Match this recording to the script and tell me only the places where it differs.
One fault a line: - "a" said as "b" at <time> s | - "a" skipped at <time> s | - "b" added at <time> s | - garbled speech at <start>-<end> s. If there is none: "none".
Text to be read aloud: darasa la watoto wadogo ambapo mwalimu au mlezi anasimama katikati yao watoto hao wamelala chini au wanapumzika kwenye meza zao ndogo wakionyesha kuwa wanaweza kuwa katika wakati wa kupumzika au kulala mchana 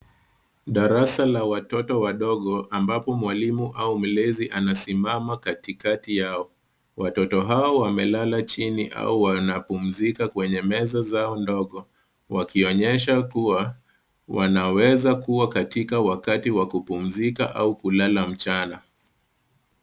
none